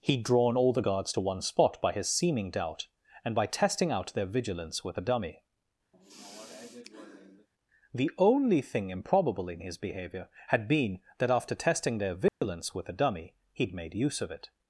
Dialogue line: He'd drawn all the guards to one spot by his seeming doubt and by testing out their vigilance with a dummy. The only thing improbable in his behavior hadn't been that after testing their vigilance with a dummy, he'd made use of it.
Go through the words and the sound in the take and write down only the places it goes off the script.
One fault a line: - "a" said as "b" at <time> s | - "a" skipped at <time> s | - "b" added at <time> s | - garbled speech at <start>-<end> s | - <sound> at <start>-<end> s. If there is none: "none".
- sigh at 5.9-7.5 s
- "hadn't" said as "had" at 10.5 s
- dropout at 12.3-12.4 s